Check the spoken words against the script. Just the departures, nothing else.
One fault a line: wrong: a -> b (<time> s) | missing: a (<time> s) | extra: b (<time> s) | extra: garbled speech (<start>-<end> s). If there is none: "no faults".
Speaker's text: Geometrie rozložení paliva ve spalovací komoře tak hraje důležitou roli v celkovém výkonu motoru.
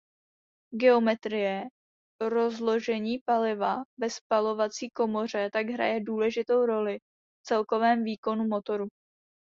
no faults